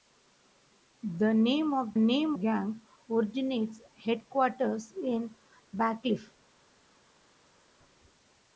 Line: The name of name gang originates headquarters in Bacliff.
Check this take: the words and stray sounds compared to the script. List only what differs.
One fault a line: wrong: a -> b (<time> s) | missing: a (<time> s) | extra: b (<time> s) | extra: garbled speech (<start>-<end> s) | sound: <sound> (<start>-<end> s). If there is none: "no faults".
no faults